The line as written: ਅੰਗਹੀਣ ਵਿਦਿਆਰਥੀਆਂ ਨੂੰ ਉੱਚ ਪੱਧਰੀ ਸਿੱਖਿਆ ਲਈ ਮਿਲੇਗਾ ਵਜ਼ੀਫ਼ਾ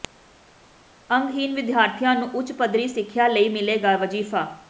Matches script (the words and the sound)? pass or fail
pass